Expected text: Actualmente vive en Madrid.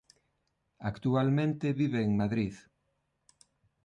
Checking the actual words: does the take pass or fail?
pass